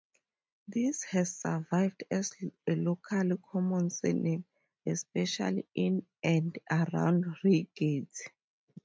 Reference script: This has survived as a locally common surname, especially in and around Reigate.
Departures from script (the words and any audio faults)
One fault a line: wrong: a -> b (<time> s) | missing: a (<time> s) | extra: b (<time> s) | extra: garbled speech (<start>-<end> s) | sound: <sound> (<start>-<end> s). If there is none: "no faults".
no faults